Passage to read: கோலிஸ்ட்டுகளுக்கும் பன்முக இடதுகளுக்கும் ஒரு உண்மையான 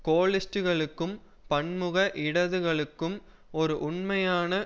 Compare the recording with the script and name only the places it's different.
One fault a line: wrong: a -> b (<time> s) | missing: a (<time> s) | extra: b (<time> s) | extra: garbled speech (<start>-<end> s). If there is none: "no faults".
no faults